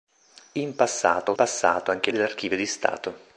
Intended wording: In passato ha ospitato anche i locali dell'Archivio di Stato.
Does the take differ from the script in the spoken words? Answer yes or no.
yes